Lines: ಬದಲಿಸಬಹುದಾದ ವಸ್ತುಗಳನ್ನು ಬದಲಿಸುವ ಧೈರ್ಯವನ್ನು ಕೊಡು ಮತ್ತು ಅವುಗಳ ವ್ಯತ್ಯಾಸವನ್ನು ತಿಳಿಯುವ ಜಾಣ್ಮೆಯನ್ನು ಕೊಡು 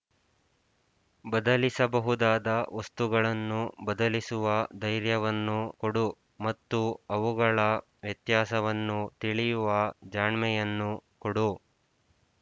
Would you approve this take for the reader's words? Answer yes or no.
yes